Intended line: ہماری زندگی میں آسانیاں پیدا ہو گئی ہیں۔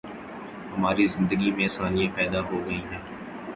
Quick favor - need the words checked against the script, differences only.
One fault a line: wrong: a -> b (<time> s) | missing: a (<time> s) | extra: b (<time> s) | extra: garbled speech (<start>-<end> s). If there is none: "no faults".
no faults